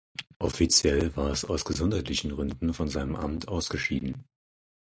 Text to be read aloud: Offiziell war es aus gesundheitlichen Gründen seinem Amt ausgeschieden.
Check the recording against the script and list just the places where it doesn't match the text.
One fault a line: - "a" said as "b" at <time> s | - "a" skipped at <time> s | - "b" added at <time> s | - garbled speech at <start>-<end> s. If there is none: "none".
- "von" added at 2.7 s